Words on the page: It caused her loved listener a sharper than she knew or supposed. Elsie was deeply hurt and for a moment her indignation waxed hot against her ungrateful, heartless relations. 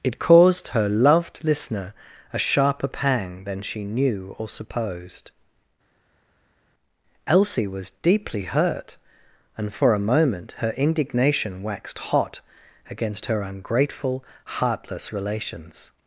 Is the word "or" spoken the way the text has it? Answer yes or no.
yes